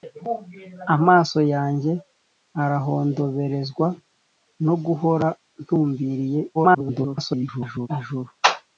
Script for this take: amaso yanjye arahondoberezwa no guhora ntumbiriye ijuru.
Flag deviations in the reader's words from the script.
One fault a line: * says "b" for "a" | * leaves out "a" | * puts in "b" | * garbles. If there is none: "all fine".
* garbles